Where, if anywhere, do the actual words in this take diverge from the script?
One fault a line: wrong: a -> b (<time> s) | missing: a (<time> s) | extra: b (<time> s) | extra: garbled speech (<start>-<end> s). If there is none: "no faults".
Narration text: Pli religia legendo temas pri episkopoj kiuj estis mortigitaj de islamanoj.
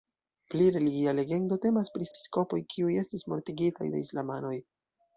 no faults